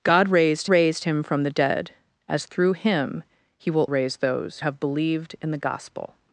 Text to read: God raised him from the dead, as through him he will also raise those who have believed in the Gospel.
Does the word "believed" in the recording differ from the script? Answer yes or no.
no